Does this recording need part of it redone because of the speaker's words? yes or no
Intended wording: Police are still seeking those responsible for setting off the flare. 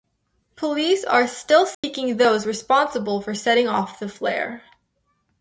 no